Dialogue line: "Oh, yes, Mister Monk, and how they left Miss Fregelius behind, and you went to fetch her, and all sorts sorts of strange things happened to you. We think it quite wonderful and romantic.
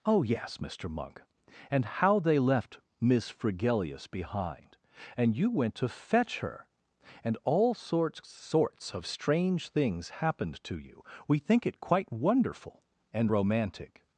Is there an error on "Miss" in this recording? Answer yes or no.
no